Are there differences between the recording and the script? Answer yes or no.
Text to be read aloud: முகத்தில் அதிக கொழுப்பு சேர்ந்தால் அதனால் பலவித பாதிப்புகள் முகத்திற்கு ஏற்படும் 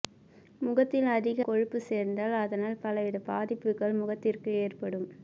no